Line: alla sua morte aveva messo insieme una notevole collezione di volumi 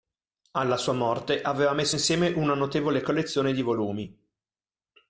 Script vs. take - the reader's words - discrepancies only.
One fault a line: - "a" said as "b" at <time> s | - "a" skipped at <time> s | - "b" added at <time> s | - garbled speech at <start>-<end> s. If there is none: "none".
none